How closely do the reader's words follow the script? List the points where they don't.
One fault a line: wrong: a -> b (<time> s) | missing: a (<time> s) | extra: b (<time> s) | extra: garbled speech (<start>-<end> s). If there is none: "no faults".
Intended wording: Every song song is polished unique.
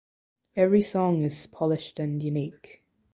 missing: song (1.2 s)
extra: and (2.0 s)